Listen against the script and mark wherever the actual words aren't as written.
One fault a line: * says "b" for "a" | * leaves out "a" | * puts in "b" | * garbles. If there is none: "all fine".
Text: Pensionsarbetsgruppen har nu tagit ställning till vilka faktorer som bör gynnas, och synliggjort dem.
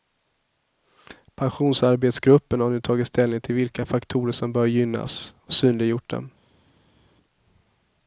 all fine